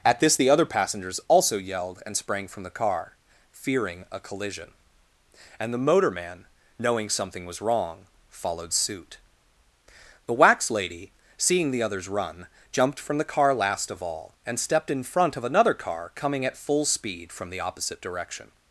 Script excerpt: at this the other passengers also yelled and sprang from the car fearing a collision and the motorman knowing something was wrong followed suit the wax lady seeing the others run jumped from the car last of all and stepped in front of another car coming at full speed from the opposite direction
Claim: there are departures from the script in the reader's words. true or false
false